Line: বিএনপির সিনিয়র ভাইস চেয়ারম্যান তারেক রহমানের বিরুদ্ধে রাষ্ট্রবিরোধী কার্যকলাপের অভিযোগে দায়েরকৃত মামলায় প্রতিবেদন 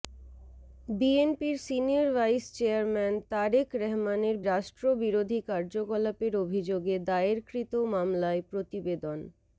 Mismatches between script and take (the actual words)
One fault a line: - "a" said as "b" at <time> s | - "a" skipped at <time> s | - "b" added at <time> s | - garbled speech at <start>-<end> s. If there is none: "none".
- "বিরুদ্ধে" skipped at 4.4 s